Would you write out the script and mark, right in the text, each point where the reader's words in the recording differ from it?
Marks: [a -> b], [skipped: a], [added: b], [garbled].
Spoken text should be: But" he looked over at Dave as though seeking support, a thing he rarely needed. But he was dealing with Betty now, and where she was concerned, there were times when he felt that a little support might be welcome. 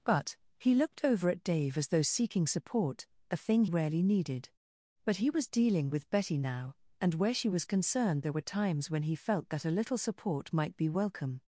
But" he looked over at Dave as though seeking support, a thing [skipped: he] rarely needed. But he was dealing with Betty now, and where she was concerned, there were times when he felt that a little support might be welcome.